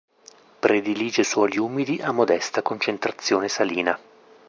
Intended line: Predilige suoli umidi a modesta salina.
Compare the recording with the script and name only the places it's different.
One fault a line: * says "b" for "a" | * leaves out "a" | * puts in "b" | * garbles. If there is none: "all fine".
* puts in "concentrazione"